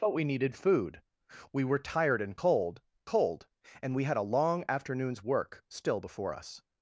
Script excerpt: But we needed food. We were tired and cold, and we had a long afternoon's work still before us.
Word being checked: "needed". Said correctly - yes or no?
yes